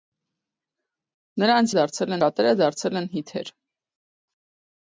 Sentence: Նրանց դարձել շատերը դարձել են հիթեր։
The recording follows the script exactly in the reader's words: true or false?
true